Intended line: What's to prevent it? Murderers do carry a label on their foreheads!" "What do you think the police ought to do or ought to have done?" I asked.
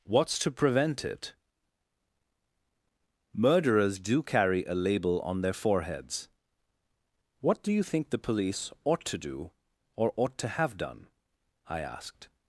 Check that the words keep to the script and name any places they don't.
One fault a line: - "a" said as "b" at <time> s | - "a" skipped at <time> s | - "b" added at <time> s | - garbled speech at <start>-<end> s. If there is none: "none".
none